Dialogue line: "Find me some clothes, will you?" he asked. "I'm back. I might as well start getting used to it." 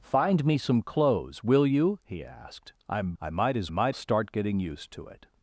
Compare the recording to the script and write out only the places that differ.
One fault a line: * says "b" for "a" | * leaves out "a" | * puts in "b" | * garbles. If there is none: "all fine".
* leaves out "back"
* says "might" for "well"